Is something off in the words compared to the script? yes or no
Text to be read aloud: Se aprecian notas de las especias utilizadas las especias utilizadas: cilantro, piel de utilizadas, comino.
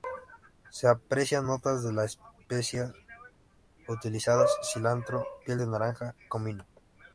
yes